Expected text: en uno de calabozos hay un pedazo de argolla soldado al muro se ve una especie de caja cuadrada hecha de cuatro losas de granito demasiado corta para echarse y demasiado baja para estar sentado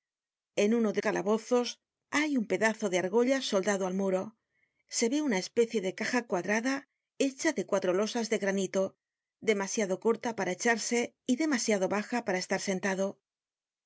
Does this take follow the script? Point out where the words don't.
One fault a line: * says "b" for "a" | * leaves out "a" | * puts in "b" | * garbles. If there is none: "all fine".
all fine